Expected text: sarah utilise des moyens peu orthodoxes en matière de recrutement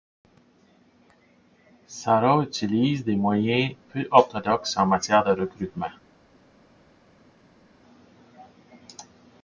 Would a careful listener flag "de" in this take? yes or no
no